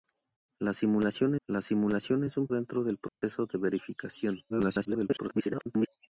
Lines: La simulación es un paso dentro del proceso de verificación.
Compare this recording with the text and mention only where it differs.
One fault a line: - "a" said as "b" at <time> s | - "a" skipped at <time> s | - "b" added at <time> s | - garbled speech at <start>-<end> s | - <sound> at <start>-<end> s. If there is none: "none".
- "la simulación" added at 1.4 s
- "paso" skipped at 2.5 s
- dropout at 3.1-3.2 s
- garbled speech at 4.5-5.9 s